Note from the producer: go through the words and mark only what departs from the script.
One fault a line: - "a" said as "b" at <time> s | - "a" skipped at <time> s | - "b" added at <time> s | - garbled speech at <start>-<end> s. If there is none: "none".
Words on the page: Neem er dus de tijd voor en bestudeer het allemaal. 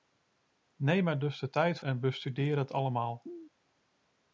- "voor" skipped at 1.8 s